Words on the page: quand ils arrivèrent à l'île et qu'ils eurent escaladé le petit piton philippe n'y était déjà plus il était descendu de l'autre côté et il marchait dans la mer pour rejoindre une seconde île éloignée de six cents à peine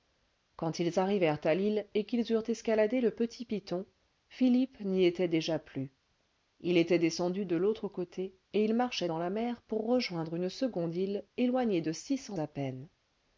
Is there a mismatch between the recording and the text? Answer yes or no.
no